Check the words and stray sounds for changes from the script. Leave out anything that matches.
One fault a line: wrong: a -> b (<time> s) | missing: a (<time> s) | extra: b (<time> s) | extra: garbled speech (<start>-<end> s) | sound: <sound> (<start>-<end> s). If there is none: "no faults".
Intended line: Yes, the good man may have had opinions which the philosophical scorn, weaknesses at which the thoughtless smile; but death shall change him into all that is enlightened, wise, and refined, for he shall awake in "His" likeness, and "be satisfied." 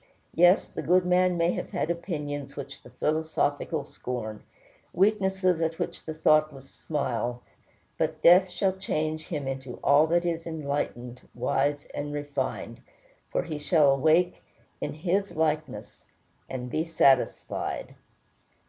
no faults